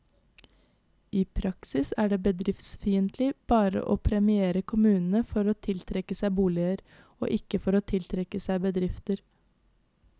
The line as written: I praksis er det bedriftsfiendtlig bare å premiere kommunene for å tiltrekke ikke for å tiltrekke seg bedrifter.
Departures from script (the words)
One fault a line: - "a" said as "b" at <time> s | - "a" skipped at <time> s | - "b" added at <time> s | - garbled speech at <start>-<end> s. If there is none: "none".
- "seg boliger og" added at 6.2 s